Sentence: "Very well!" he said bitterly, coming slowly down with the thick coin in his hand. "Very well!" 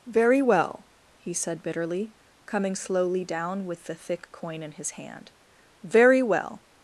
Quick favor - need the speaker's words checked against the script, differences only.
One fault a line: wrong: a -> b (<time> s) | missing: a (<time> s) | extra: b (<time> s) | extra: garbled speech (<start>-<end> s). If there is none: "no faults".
no faults